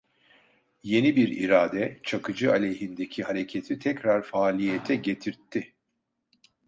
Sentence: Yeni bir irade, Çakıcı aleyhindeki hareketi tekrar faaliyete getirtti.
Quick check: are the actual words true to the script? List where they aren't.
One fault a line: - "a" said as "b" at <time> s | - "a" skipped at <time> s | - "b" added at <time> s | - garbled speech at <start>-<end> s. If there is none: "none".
none